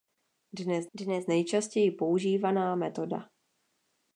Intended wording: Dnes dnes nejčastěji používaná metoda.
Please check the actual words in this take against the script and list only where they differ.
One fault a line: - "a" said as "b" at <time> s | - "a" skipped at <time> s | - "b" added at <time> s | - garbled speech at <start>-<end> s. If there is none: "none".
none